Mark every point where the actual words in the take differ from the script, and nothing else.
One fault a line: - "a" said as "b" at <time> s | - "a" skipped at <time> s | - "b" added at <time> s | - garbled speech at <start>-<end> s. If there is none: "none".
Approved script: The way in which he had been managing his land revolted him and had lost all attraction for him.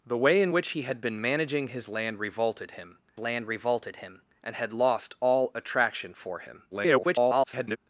- "land revolted him" added at 3.2 s
- garbled speech at 6.7-7.8 s